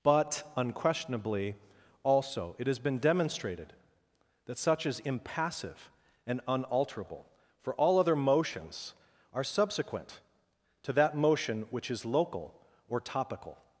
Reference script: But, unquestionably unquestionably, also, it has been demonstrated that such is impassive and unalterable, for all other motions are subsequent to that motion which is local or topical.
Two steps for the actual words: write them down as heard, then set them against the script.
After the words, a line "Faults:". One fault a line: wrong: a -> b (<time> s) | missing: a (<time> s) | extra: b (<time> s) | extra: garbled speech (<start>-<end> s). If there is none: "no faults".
But, unquestionably, also, it has been demonstrated that such is impassive and unalterable, for all other motions are subsequent to that motion which is local or topical.
Faults:
missing: unquestionably (1.6 s)